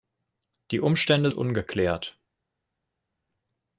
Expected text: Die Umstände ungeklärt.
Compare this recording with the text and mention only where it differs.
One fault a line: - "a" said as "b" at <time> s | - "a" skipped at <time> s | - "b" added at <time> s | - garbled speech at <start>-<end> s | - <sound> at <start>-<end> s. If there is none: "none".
none